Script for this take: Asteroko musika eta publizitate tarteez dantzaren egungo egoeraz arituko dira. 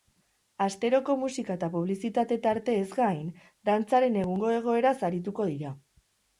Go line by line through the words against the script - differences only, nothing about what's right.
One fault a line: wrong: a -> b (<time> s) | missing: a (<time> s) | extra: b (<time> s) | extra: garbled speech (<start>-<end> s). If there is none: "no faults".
extra: gain (3.0 s)